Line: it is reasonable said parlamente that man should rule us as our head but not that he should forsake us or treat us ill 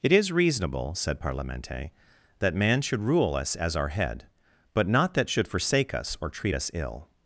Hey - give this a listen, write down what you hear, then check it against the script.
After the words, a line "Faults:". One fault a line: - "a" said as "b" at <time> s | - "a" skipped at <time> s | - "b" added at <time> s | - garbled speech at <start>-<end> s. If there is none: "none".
it is reasonable said parlamente that man should rule us as our head but not that should forsake us or treat us ill
Faults:
- "he" skipped at 5.3 s